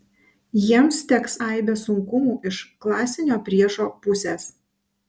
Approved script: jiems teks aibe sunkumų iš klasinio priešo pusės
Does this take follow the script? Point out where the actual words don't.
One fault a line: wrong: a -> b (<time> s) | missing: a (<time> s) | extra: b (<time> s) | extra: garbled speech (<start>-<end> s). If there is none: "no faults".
no faults